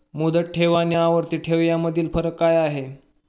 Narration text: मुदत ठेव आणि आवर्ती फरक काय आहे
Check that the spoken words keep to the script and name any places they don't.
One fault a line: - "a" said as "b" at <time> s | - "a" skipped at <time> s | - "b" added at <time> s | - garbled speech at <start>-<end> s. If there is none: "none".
- "ठेव यामधील" added at 1.4 s